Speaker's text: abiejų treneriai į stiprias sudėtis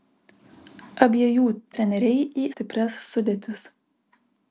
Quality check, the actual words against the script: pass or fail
pass